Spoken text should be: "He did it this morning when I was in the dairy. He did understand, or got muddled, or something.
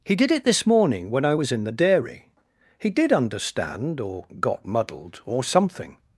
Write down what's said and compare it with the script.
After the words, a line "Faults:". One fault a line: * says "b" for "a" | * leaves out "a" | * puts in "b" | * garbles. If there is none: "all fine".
"He did it this morning when I was in the dairy. He did understand, or got muddled, or something.
Faults:
all fine